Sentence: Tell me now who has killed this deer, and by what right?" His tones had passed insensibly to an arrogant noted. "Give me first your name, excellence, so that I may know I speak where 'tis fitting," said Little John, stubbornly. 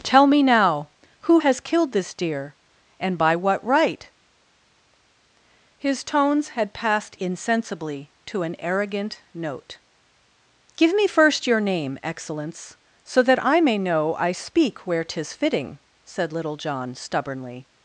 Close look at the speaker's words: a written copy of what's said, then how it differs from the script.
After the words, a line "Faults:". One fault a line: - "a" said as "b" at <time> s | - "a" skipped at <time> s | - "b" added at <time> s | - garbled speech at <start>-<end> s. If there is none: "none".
Tell me now who has killed this deer, and by what right?" His tones had passed insensibly to an arrogant note. "Give me first your name, excellence, so that I may know I speak where 'tis fitting," said Little John, stubbornly.
Faults:
- "noted" said as "note" at 9.3 s